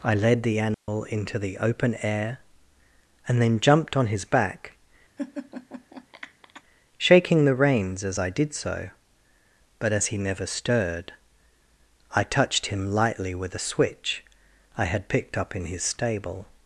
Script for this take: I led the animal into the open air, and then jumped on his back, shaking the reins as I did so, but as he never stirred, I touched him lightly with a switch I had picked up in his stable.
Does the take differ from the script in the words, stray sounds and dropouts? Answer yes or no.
yes